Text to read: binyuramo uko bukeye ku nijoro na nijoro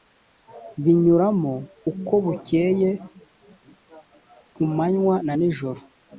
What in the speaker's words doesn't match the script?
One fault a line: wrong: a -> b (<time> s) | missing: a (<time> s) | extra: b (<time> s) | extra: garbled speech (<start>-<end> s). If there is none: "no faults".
wrong: nijoro -> manywa (4.8 s)